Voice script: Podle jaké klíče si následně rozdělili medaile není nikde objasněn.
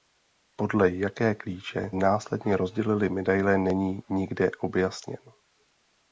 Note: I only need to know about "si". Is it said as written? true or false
false